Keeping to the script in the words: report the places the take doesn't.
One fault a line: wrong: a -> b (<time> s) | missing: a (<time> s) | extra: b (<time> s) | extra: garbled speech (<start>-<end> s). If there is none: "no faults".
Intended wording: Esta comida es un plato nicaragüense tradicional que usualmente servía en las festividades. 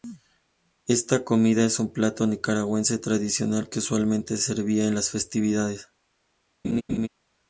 no faults